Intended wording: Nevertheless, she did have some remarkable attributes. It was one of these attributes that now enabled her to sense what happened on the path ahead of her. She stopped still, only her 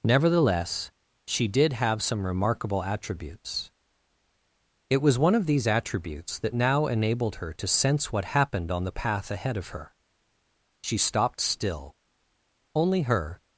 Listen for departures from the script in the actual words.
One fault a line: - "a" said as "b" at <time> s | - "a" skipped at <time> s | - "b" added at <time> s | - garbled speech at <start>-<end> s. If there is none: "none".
none